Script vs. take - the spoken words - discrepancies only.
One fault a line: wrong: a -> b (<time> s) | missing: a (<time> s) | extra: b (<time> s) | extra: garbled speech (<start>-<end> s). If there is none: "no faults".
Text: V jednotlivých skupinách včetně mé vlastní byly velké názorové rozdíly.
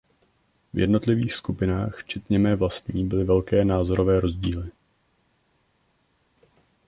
no faults